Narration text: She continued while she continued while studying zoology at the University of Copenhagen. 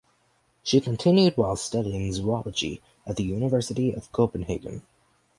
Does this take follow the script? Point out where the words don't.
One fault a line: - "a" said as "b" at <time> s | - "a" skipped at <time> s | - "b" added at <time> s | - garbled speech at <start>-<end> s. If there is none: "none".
- "she continued while" skipped at 1.6 s